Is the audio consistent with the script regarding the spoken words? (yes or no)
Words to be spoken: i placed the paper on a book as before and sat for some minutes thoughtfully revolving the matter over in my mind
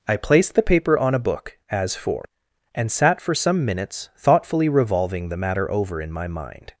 no